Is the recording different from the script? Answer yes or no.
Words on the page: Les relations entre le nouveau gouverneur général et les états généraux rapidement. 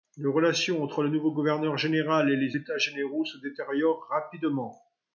yes